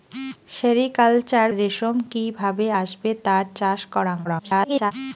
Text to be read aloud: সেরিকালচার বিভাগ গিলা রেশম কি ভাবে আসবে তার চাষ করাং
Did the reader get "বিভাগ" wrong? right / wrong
wrong